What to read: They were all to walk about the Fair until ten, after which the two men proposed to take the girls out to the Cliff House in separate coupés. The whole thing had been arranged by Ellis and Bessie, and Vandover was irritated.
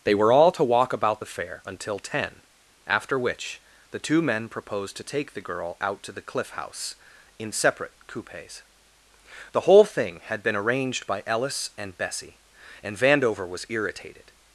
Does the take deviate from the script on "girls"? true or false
true